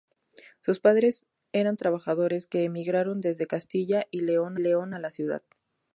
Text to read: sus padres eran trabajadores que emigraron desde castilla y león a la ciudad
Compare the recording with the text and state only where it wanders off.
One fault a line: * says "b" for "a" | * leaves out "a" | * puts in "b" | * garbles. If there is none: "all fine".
* puts in "león"